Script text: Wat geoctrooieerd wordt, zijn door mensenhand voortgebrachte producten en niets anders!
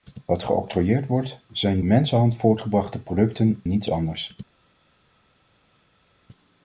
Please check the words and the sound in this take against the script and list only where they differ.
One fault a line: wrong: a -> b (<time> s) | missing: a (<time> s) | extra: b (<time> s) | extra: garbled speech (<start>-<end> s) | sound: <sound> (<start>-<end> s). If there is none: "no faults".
missing: door (1.8 s)
missing: en (3.6 s)